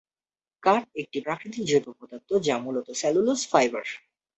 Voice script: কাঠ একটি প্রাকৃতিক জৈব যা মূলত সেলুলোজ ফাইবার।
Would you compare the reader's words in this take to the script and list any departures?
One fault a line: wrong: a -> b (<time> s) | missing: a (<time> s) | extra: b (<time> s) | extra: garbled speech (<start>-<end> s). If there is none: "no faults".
extra: পদার্থ (2.0 s)